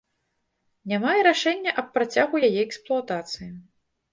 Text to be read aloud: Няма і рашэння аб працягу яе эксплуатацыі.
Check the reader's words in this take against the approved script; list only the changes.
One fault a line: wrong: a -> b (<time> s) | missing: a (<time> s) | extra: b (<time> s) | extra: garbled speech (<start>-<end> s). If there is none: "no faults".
no faults